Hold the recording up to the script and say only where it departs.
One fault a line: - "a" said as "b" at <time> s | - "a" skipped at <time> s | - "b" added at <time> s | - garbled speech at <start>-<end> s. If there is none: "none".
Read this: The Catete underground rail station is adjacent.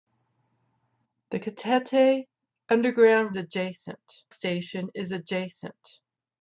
- "rail" said as "adjacent" at 3.4 s